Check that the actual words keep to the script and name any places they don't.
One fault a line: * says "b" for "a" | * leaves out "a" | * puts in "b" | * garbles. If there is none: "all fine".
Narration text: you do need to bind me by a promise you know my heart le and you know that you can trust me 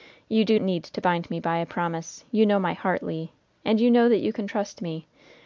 all fine